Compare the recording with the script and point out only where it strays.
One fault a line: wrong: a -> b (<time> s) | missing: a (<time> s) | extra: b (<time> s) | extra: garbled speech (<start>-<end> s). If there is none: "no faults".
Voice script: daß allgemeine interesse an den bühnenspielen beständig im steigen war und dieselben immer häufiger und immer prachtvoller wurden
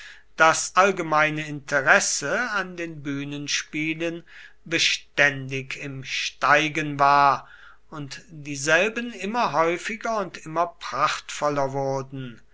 no faults